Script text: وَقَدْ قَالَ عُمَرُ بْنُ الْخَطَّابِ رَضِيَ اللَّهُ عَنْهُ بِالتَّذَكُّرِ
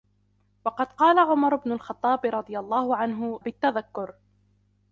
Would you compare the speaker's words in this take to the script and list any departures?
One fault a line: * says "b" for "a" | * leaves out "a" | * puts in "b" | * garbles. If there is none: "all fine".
all fine